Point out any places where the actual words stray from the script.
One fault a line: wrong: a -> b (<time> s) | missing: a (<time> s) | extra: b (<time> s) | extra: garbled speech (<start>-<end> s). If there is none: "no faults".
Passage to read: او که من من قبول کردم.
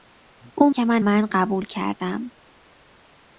no faults